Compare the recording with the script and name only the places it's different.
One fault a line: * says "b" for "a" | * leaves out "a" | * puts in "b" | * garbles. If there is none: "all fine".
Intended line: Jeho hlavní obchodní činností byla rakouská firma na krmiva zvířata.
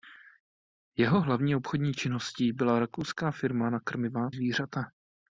all fine